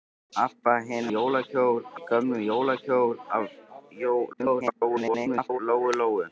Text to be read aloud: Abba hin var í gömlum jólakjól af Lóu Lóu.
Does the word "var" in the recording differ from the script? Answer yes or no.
yes